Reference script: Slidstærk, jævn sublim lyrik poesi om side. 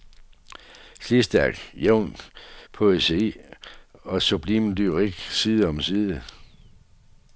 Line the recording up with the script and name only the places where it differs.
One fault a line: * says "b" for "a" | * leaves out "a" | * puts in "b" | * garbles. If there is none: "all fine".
* puts in "poesi og"
* says "side" for "poesi"